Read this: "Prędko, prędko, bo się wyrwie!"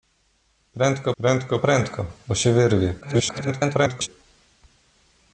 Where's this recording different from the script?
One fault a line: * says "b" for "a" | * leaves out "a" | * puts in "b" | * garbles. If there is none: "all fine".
* puts in "prędko"
* garbles